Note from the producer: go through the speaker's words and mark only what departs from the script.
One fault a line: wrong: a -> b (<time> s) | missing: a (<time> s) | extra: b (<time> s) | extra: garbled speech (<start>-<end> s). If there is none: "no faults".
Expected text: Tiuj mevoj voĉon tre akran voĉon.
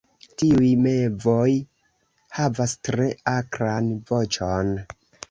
wrong: voĉon -> havas (2.4 s)